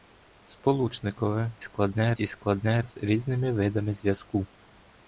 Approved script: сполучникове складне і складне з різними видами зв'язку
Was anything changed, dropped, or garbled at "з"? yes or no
no